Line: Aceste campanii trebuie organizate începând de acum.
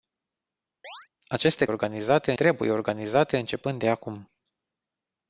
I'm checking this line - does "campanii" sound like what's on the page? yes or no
no